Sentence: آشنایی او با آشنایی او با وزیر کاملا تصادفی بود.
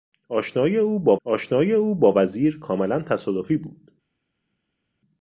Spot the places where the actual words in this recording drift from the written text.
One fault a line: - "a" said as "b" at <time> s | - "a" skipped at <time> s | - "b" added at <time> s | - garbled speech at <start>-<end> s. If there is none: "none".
none